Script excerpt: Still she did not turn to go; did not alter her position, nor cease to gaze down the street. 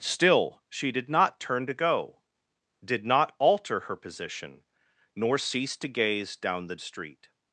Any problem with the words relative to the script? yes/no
no